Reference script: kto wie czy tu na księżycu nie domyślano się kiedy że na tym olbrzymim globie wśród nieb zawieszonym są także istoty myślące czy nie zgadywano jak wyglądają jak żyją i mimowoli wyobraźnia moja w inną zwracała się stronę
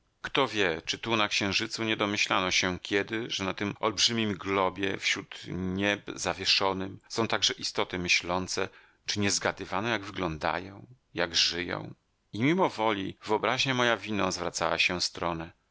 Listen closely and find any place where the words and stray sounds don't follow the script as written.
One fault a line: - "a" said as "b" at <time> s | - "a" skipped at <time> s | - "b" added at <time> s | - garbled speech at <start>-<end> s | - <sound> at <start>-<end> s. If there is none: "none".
none